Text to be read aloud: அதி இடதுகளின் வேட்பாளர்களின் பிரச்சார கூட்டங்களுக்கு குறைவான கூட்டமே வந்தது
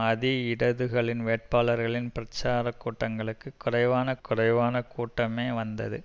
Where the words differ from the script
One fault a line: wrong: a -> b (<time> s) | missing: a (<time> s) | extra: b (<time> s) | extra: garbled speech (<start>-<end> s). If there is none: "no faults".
extra: குறைவான (4.2 s)